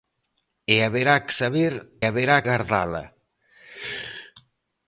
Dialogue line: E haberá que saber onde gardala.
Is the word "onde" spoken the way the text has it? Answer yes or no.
no